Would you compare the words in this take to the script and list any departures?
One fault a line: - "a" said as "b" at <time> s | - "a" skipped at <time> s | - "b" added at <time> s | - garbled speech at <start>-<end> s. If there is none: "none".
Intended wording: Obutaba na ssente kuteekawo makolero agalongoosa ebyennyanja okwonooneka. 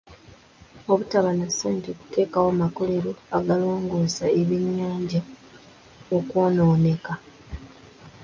none